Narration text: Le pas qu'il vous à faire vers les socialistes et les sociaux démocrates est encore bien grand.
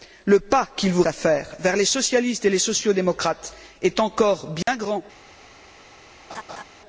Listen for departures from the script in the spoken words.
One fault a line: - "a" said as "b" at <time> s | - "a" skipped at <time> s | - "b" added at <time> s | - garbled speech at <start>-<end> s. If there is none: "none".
none